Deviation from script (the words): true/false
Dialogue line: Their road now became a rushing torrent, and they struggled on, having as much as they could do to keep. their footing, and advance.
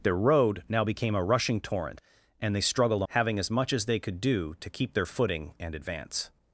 true